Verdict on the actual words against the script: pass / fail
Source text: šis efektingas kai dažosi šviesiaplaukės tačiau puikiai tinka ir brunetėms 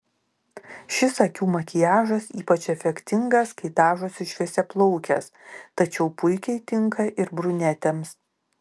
fail